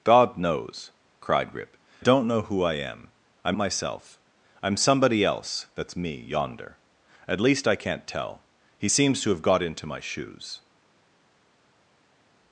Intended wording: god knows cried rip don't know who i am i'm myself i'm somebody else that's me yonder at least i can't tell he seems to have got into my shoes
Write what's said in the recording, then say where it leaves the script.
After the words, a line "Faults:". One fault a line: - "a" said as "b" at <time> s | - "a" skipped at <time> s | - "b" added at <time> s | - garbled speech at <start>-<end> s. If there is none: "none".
god knows cried rip don't know who i am i'm myself i'm somebody else that's me yonder at least i can't tell he seems to have got into my shoes
Faults:
none